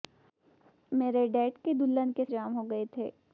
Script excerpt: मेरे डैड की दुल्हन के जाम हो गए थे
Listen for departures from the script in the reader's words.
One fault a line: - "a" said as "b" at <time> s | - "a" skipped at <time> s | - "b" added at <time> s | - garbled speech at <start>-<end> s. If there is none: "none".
none